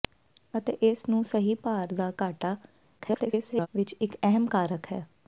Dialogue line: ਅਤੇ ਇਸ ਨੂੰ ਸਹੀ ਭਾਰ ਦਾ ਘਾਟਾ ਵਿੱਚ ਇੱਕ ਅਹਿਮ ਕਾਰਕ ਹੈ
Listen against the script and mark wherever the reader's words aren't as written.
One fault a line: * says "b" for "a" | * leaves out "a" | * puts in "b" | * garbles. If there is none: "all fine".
* garbles